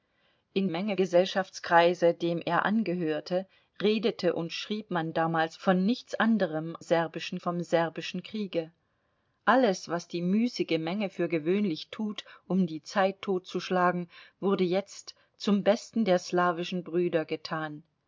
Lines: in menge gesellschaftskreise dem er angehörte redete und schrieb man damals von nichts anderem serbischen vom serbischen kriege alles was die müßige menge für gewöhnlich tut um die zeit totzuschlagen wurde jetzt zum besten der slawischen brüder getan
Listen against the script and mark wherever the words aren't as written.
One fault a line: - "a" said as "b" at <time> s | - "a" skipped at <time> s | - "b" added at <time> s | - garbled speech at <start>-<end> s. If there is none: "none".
none